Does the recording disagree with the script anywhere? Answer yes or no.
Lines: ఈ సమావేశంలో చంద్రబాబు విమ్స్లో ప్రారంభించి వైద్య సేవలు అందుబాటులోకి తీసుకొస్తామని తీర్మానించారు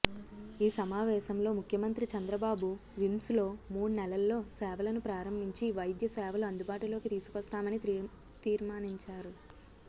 yes